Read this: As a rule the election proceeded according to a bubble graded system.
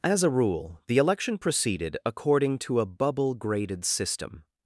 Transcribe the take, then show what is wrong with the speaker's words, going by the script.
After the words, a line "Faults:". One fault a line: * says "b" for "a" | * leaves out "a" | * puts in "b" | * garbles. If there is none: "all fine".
As a rule the election proceeded according to a bubble graded system.
Faults:
all fine